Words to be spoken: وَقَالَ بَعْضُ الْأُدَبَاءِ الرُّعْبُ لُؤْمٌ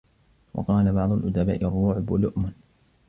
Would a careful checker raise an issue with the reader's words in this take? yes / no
no